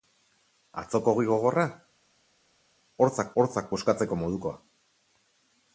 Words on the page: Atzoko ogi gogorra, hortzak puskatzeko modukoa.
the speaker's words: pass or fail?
fail